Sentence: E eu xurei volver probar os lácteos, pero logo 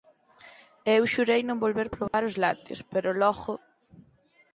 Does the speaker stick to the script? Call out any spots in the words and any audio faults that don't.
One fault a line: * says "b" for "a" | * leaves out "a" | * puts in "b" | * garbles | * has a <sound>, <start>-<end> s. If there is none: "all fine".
* puts in "non"
* has a dropout, 2.1-2.1 s